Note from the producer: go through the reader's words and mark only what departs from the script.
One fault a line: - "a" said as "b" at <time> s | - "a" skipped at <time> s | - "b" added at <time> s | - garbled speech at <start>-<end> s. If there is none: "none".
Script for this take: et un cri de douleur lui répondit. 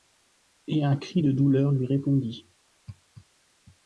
none